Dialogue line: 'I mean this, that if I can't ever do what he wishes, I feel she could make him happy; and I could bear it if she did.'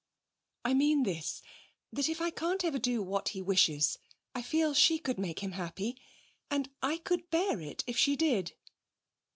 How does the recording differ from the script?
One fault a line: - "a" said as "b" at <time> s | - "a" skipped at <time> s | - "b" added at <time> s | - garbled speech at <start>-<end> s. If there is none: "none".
none